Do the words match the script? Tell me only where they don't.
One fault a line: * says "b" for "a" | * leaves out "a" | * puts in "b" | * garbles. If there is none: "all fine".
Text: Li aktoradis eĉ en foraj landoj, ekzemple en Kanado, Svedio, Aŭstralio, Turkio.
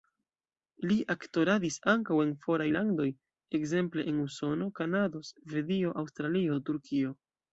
* says "ankaŭ" for "eĉ"
* puts in "Usono"